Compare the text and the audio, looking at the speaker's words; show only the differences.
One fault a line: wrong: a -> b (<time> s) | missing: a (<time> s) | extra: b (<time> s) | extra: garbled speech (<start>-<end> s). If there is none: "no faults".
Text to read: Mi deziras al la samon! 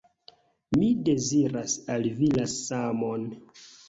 extra: vi (2.2 s)